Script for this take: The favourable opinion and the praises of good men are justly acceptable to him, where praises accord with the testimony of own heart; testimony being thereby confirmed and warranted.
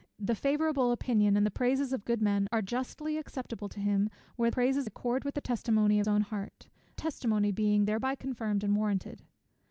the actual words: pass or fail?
pass